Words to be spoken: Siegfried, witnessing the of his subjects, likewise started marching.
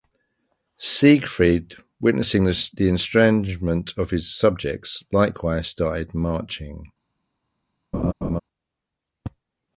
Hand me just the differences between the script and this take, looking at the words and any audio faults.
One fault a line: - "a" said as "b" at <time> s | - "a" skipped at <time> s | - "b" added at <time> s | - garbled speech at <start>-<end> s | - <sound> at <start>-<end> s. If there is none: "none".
- "estrangement" added at 2.9 s
- laugh at 7.9-8.4 s